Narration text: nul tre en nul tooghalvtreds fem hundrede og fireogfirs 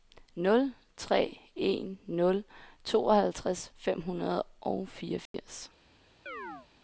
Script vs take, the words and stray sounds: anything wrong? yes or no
yes